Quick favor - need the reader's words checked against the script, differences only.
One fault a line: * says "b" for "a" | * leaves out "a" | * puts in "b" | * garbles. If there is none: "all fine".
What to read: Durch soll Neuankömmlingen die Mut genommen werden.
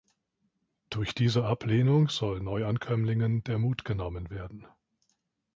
* puts in "diese Ablehnung"
* says "der" for "die"